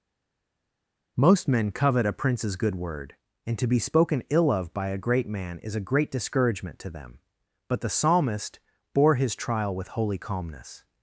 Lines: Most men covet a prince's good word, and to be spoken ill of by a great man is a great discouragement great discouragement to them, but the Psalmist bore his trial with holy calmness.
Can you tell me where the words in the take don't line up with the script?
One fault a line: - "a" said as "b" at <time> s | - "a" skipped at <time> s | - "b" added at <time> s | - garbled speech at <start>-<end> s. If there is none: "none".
- "great discouragement" skipped at 6.8 s